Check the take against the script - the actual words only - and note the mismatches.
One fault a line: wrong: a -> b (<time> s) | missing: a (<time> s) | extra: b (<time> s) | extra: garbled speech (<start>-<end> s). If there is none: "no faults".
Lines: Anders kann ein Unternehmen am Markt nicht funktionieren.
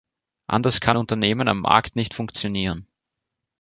missing: ein (1.0 s)